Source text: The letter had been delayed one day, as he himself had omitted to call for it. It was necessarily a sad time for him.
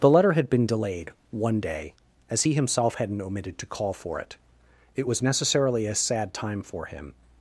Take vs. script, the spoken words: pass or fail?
fail